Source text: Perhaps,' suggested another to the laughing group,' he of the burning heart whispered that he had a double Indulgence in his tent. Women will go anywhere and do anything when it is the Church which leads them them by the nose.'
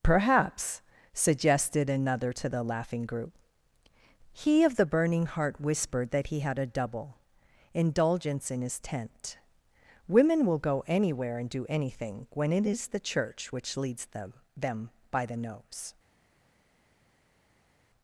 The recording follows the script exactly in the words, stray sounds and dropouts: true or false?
true